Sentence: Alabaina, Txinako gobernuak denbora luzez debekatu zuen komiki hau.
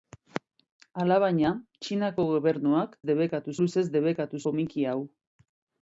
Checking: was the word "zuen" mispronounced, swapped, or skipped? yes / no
yes